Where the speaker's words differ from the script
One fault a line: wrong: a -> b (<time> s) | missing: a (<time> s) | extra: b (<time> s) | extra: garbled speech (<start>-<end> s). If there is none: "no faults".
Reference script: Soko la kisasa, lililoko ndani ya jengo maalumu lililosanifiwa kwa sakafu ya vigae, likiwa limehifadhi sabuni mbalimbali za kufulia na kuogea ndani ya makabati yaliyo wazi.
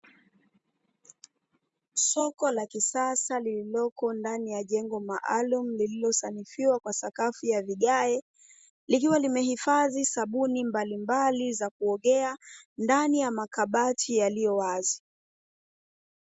missing: kufulia na (11.7 s)